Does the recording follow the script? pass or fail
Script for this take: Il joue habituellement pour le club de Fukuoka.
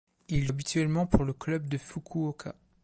fail